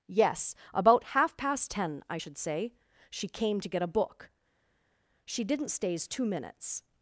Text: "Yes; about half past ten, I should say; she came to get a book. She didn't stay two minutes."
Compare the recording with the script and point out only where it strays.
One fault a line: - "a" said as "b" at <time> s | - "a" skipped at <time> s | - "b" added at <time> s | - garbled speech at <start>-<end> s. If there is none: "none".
- "stay" said as "stays" at 5.7 s